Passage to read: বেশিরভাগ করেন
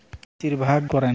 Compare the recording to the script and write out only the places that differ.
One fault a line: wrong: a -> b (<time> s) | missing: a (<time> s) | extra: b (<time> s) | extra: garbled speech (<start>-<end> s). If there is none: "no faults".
no faults